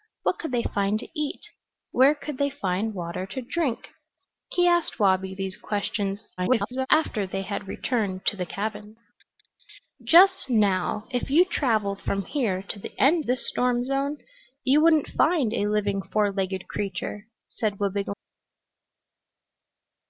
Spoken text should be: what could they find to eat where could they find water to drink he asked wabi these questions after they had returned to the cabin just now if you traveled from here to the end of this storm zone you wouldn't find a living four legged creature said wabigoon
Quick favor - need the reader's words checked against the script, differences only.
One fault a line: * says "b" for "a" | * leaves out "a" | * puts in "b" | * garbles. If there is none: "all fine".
* garbles
* leaves out "of"